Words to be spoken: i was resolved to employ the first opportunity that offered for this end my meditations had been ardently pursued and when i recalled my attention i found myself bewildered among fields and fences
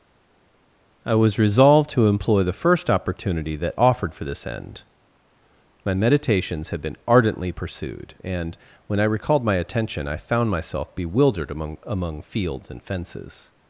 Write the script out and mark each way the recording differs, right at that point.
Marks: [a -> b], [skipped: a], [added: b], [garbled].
i was resolved to employ the first opportunity that offered for this end my meditations had been ardently pursued and when i recalled my attention i found myself bewildered among [added: among] fields and fences